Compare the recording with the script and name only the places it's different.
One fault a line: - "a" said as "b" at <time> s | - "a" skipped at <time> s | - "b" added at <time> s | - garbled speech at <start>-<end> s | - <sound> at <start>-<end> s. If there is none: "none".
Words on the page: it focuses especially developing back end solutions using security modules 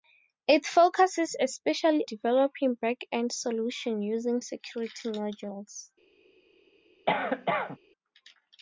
- cough at 7.1-7.8 s